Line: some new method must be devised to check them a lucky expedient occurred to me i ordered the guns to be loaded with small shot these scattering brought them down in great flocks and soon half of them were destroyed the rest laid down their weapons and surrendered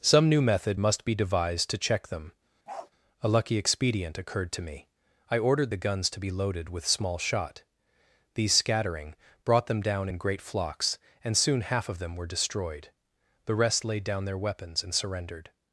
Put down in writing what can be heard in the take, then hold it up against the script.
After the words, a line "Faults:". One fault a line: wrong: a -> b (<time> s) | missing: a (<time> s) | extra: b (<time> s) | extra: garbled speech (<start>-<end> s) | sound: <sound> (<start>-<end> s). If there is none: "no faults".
some new method must be devised to check them a lucky expedient occurred to me i ordered the guns to be loaded with small shot these scattering brought them down in great flocks and soon half of them were destroyed the rest laid down their weapons and surrendered
Faults:
sound: bark (2.7-2.9 s)